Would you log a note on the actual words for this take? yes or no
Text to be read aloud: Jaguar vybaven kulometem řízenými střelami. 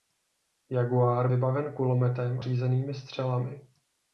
no